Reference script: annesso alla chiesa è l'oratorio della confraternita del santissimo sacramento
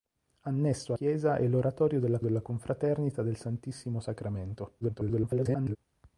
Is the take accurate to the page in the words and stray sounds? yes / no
no